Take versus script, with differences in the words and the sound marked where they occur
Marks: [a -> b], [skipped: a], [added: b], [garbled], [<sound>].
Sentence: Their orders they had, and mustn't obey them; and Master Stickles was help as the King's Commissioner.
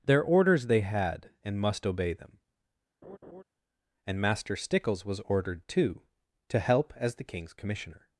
Their orders they had, and [mustn't -> must] obey them; [laugh] and Master Stickles was [added: ordered too to] help as the King's Commissioner.